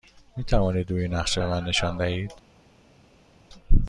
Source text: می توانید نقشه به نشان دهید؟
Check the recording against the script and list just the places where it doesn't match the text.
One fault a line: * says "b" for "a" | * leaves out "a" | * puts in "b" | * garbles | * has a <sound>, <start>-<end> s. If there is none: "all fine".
* puts in "روی"
* puts in "من"